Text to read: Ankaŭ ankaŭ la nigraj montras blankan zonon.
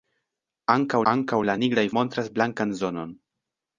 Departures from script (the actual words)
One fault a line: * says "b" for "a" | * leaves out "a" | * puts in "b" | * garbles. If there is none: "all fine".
all fine